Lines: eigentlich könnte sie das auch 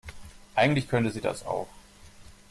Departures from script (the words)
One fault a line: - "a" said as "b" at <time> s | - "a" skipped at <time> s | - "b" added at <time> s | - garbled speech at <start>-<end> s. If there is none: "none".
none